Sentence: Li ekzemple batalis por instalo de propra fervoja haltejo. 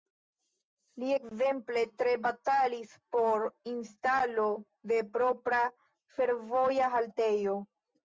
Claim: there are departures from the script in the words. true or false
true